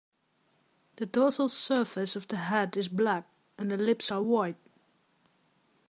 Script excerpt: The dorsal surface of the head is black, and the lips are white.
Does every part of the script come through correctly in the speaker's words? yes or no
yes